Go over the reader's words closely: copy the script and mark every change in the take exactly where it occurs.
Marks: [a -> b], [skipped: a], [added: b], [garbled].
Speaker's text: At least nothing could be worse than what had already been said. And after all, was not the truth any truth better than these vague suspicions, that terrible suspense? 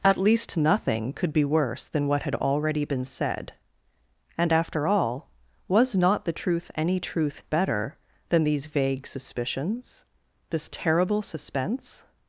At least nothing could be worse than what had already been said. And after all, was not the truth any truth better than these vague suspicions, [that -> this] terrible suspense?